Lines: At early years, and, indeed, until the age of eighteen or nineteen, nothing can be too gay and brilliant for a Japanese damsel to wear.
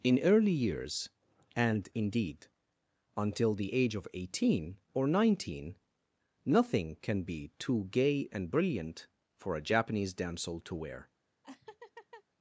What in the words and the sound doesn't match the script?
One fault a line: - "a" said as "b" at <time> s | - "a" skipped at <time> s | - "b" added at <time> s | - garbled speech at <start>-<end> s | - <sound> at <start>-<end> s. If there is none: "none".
- "At" said as "In" at 0.0 s
- laugh at 11.4-12.2 s